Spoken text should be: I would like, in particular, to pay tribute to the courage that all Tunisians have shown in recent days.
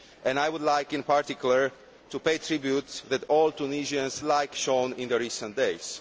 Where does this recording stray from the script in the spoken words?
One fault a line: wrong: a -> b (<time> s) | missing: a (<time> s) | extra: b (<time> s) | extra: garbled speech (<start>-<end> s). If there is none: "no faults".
missing: to the courage (2.9 s)
wrong: have -> like (4.2 s)